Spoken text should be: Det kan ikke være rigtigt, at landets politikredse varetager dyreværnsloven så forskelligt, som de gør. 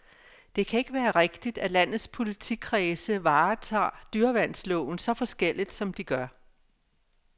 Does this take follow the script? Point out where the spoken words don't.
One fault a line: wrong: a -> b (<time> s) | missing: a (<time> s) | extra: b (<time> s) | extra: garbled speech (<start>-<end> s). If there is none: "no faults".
no faults